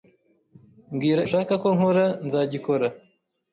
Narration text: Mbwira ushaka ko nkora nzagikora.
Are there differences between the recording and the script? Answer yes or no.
no